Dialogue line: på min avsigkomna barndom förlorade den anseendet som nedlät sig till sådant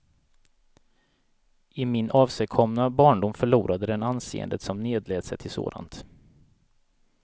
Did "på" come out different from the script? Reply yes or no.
yes